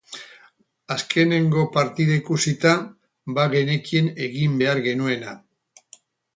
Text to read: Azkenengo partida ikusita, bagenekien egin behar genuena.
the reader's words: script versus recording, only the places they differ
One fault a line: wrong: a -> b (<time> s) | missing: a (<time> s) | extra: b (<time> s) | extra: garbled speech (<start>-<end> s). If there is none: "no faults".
no faults